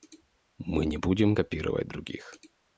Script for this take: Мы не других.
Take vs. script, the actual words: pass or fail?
fail